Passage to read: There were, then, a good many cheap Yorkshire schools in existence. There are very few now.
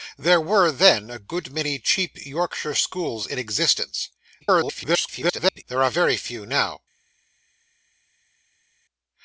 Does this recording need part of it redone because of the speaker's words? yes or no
yes